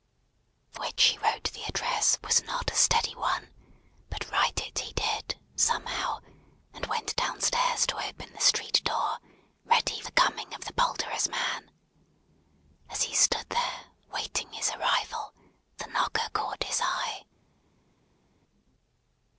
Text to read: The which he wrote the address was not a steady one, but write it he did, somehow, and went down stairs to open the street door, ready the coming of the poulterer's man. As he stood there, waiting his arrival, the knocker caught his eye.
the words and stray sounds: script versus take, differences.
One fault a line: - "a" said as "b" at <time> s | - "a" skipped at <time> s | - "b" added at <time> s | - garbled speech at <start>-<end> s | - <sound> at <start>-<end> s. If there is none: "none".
none